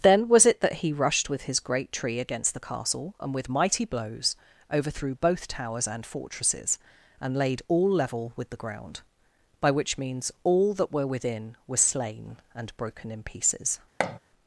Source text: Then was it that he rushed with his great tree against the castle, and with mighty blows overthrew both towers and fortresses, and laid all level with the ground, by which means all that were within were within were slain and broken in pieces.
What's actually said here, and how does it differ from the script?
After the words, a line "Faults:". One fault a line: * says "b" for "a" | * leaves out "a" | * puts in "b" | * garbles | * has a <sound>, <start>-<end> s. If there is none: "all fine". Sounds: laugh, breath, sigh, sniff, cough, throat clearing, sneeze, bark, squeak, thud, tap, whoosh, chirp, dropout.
Then was it that he rushed with his great tree against the castle, and with mighty blows overthrew both towers and fortresses, and laid all level with the ground, by which means all that were within were slain and broken in pieces.
Faults:
* leaves out "within were"
* has a thud, 14.0-14.2 s